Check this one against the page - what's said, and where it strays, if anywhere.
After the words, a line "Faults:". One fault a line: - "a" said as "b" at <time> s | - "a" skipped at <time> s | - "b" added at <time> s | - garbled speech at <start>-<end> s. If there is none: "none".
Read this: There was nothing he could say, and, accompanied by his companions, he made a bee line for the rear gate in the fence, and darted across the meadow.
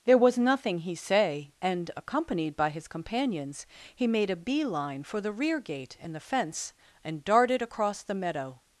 There was nothing he say, and, accompanied by his companions, he made a bee line for the rear gate in the fence, and darted across the meadow.
Faults:
- "could" skipped at 0.9 s